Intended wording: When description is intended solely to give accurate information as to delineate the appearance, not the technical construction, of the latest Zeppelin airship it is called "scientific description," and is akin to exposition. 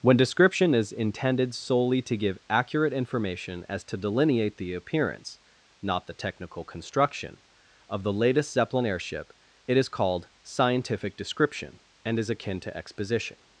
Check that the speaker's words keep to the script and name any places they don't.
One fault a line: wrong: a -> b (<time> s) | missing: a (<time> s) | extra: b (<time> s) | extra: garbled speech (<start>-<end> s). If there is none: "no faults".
no faults